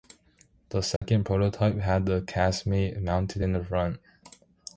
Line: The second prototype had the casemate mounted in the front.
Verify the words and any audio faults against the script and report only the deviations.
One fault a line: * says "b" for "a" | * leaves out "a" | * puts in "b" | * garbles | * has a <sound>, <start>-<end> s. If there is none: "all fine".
* has a dropout, 1.0-1.0 s